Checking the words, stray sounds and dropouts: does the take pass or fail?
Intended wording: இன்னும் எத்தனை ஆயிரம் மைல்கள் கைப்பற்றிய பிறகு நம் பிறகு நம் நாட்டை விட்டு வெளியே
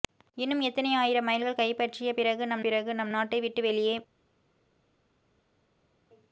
pass